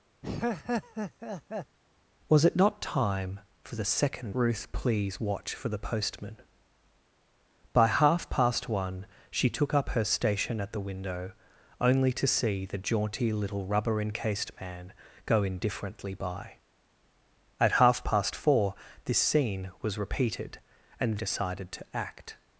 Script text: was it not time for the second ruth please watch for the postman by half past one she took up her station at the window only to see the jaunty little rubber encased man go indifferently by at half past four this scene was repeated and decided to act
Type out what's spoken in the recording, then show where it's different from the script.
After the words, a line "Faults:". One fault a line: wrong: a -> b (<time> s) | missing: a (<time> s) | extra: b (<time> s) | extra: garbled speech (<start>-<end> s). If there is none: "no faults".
was it not time for the second ruth please watch for the postman by half past one she took up her station at the window only to see the jaunty little rubber encased man go indifferently by at half past four this scene was repeated and decided to act
Faults:
no faults